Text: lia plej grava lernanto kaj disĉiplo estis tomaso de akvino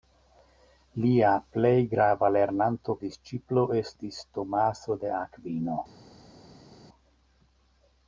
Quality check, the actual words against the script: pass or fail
fail